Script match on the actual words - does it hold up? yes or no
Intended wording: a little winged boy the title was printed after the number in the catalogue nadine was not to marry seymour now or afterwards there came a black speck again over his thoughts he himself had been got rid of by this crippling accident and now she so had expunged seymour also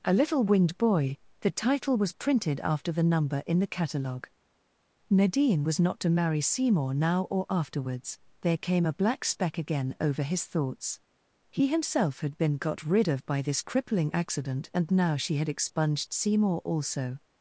no